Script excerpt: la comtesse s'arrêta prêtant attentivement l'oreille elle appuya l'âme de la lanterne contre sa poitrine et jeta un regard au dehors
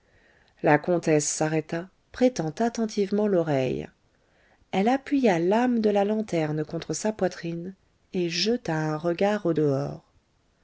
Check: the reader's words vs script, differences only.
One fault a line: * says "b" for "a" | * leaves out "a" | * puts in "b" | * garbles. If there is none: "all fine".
all fine